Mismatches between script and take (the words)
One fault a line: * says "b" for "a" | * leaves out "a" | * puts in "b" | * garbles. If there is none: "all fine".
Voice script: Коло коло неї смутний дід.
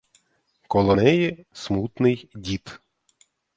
* leaves out "коло"